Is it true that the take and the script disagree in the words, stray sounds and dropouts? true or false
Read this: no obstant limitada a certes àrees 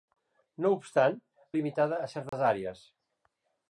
true